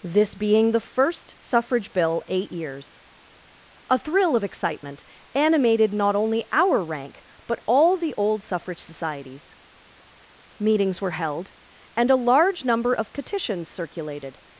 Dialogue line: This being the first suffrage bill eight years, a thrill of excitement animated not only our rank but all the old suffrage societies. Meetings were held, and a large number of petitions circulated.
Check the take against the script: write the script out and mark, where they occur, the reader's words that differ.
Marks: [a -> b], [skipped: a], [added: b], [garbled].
This being the first suffrage bill eight years, a thrill of excitement animated not only our rank but all the old suffrage societies. Meetings were held, and a large number of petitions circulated.